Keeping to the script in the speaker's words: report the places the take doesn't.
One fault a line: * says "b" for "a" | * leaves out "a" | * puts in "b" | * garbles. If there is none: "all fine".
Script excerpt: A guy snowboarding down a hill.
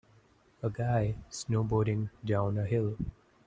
all fine